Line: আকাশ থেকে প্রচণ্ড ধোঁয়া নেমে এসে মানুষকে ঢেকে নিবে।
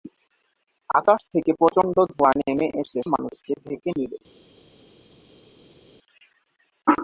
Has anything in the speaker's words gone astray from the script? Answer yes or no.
no